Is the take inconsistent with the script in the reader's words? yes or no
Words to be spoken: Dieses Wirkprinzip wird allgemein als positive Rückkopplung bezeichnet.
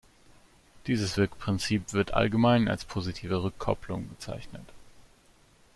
no